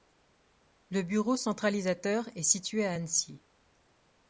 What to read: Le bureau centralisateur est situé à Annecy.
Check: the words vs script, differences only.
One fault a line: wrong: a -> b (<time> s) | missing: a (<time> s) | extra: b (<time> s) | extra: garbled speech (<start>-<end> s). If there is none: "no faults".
no faults